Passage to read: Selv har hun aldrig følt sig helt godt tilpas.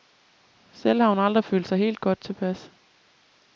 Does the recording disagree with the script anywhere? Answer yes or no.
no